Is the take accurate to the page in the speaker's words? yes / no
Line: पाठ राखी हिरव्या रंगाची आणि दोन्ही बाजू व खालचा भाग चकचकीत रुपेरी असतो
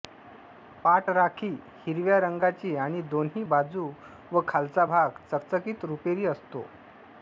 yes